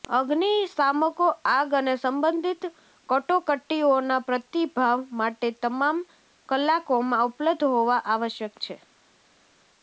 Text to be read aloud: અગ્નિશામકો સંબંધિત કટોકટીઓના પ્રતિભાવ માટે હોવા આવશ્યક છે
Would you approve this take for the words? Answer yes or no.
no